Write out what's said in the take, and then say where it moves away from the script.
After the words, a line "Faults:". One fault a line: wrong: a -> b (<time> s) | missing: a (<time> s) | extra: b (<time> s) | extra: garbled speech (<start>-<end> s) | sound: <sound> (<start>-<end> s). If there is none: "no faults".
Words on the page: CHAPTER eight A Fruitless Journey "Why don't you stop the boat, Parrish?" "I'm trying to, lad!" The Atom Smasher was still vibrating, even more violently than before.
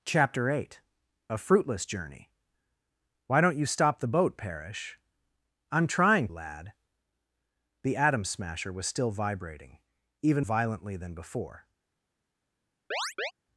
CHAPTER eight A Fruitless Journey "Why don't you stop the boat, Parrish?" "I'm trying lad!" The Atom Smasher was still vibrating, even violently than before.
Faults:
missing: to (6.3 s)
missing: more (10.5 s)
sound: chirp (12.9-13.3 s)